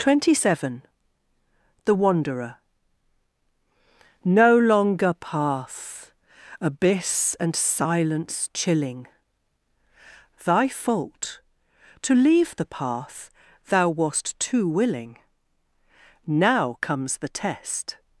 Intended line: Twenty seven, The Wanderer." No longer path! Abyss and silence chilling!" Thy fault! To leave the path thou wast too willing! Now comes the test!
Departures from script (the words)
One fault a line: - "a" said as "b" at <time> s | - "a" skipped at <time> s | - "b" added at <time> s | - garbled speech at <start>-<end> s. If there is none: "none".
none